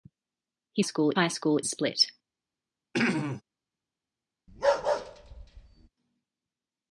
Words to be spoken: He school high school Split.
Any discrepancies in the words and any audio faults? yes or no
yes